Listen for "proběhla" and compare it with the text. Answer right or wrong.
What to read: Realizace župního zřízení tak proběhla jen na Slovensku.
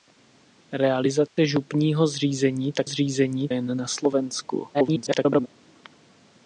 wrong